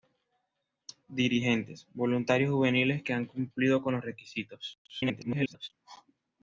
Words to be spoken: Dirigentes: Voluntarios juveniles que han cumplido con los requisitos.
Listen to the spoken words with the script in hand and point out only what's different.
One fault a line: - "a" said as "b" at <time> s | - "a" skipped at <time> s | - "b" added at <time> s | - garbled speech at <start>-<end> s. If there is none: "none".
- garbled speech at 4.9-5.7 s